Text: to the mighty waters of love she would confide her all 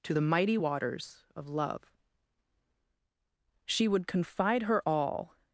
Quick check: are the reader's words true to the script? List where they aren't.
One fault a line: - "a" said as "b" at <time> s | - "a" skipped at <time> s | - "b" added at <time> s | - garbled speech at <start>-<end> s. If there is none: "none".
none